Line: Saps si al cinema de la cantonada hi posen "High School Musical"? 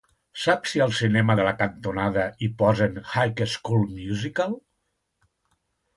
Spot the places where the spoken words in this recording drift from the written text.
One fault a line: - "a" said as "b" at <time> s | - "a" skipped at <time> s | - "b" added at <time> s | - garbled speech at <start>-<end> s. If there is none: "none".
none